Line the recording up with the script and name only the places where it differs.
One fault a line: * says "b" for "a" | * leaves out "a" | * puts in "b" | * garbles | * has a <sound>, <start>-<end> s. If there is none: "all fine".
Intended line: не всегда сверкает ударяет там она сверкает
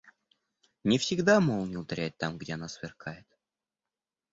* says "молния" for "сверкает"
* puts in "где"